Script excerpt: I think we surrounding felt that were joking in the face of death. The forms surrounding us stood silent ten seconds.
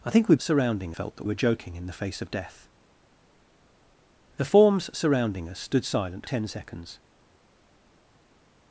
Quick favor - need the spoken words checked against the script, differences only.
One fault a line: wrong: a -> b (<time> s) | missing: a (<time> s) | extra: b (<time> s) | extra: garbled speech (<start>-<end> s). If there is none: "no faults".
no faults